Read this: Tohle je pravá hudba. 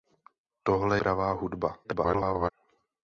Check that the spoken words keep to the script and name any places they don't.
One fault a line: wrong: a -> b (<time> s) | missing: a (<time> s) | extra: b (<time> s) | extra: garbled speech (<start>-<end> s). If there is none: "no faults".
missing: je (1.0 s)
extra: garbled speech (1.8-2.5 s)